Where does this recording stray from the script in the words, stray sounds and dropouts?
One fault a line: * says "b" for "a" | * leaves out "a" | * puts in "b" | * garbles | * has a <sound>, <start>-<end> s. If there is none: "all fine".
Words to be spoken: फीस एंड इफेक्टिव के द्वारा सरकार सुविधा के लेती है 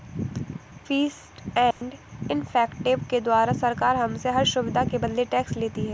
* has a dropout, 1.7-1.8 s
* puts in "हमसे हर"
* puts in "बदले टैक्स"